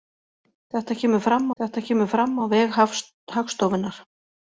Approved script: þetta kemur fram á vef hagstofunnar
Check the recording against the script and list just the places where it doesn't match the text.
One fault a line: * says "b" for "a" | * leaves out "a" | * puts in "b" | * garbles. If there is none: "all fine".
* puts in "þetta kemur fram"